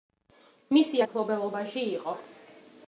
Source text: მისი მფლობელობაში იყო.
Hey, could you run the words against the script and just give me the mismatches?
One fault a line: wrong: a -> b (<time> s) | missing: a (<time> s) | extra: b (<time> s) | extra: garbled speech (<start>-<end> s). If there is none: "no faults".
no faults